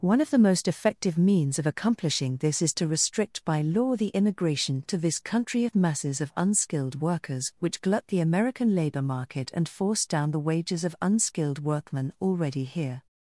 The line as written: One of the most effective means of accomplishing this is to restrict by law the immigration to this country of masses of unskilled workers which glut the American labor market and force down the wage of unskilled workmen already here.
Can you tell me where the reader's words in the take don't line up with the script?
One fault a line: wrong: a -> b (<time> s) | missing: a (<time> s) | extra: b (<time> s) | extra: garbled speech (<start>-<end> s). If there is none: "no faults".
wrong: wage -> wages (10.5 s)